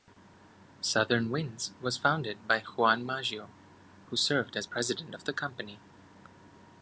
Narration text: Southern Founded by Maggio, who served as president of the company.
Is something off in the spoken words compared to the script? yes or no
yes